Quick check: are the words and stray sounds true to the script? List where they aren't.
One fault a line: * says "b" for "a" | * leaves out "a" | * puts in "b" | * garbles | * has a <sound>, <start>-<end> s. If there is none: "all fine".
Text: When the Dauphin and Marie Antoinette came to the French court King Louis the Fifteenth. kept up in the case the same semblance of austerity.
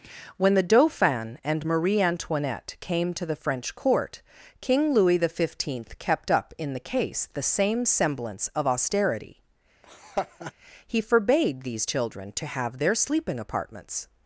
* has a laugh, 9.8-10.5 s
* puts in "He forbade these children to have their sleeping apartments"